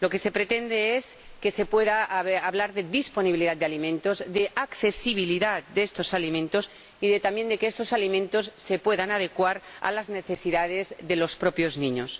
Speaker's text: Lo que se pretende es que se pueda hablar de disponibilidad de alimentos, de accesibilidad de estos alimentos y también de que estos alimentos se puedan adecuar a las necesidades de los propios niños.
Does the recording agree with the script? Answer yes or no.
yes